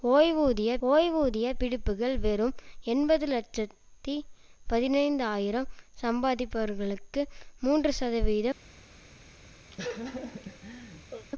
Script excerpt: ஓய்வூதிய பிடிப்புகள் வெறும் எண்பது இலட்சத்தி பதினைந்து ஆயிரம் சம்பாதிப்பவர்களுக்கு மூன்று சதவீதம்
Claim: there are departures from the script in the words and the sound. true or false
true